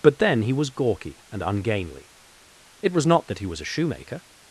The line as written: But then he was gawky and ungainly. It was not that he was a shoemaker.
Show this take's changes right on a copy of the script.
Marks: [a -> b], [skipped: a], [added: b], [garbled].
But then he was gawky and ungainly. It was not that he was a shoemaker.